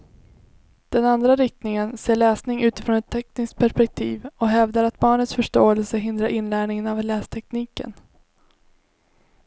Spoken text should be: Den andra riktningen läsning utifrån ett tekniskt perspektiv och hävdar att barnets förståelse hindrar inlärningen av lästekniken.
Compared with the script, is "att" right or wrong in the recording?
right